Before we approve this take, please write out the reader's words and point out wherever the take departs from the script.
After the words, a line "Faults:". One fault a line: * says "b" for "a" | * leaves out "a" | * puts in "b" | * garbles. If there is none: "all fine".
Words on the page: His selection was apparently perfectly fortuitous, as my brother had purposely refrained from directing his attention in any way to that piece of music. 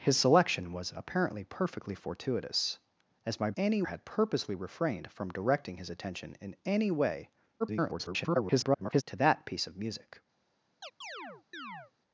His selection was apparently perfectly fortuitous, as my any had purposely refrained from directing his attention in any way [garbled] to that piece of music.
Faults:
* says "any" for "brother"
* garbles